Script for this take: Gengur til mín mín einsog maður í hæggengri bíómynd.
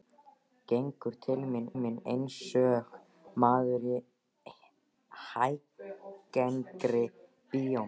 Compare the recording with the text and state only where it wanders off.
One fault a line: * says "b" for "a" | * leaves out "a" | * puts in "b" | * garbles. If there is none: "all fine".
all fine